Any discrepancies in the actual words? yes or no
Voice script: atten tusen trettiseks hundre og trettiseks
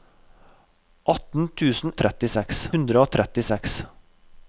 no